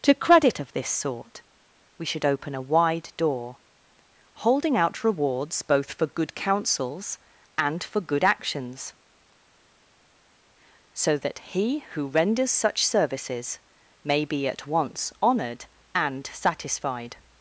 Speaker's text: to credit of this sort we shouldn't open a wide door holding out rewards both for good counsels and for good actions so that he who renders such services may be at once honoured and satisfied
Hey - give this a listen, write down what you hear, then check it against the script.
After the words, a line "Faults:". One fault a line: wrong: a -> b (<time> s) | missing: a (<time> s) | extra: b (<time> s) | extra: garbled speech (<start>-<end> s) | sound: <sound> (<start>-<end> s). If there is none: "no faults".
to credit of this sort we should open a wide door holding out rewards both for good counsels and for good actions so that he who renders such services may be at once honoured and satisfied
Faults:
wrong: shouldn't -> should (2.1 s)